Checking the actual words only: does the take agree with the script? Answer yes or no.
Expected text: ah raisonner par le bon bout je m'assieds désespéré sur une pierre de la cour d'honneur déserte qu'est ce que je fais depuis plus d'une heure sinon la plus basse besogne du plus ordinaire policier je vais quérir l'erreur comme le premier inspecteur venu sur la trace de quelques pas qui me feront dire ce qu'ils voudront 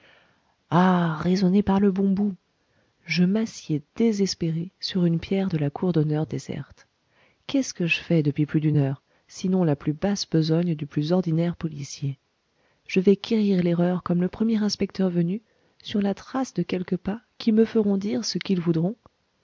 yes